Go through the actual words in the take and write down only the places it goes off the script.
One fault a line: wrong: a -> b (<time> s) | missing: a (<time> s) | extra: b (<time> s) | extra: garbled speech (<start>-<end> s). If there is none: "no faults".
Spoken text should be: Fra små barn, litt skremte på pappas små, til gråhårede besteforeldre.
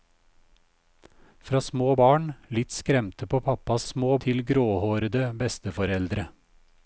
no faults